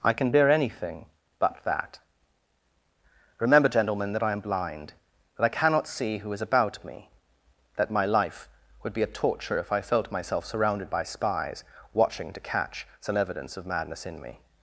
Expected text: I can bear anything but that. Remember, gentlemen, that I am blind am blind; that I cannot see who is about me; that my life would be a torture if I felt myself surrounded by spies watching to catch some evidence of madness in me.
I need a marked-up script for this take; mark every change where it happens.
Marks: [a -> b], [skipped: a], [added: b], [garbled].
I can bear anything but that. Remember, gentlemen, that I am blind [skipped: am blind;] that I cannot see who is about me; that my life would be a torture if I felt myself surrounded by spies watching to catch some evidence of madness in me.